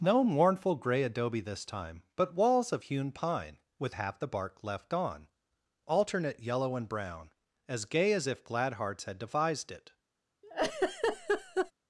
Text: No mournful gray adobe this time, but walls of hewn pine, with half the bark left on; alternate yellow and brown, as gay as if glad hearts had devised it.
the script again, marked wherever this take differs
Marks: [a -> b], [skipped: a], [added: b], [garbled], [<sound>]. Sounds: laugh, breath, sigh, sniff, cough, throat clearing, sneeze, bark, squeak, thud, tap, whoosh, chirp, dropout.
No mournful gray adobe this time, but walls of hewn pine, with half the bark left on; alternate yellow and brown, as gay as if glad hearts had devised it. [laugh]